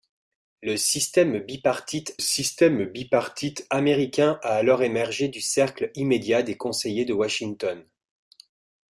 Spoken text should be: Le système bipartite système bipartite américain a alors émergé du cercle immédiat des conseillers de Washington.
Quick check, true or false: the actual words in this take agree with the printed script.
true